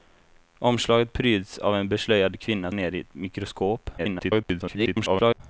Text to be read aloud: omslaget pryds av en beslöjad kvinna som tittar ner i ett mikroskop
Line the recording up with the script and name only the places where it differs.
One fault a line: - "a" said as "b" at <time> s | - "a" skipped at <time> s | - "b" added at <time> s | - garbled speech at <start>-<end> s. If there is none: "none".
- "som tittar" skipped at 2.7 s
- garbled speech at 4.0-5.4 s